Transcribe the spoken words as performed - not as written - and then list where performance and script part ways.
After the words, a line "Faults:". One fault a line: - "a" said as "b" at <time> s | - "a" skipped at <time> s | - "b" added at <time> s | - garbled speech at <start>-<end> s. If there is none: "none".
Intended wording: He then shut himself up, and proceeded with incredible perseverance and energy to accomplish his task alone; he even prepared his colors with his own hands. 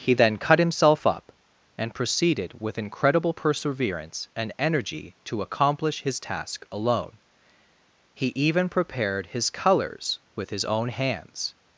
He then cut himself up, and proceeded with incredible perseverance and energy to accomplish his task alone; he even prepared his colors with his own hands.
Faults:
- "shut" said as "cut" at 0.4 s